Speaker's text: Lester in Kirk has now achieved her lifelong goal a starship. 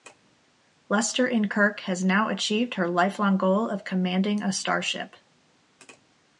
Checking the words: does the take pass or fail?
fail